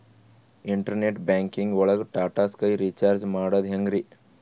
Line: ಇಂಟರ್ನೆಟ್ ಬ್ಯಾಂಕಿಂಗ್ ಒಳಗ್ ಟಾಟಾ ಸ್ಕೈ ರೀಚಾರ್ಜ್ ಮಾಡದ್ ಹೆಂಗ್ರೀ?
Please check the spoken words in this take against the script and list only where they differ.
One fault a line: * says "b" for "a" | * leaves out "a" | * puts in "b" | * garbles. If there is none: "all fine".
all fine